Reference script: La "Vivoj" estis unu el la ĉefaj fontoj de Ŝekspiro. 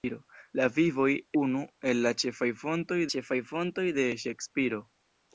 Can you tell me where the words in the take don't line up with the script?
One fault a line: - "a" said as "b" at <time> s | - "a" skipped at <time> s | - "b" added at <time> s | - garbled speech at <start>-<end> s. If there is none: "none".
- "estis" skipped at 1.1 s
- "ĉefaj fontoj" added at 3.2 s